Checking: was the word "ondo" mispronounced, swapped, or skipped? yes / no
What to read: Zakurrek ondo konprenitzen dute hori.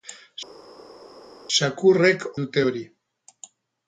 yes